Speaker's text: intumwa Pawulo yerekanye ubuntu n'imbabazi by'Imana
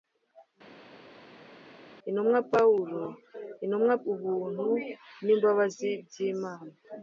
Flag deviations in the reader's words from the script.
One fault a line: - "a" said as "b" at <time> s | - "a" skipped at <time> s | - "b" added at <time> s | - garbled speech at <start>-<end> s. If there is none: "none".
- "yerekanye" said as "intumwa" at 3.6 s